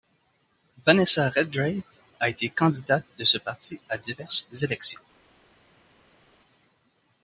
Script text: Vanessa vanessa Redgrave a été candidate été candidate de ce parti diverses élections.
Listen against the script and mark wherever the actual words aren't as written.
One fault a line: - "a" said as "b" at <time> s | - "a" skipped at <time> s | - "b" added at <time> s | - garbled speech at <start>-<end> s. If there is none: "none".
- "vanessa" skipped at 1.3 s
- "été candidate" skipped at 3.0 s
- "à" added at 3.9 s